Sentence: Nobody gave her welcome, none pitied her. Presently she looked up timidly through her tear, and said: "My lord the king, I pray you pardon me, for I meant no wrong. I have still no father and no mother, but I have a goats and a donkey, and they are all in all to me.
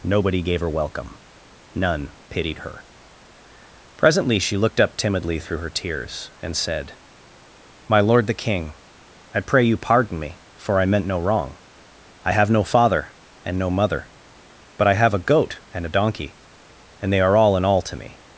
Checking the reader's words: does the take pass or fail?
fail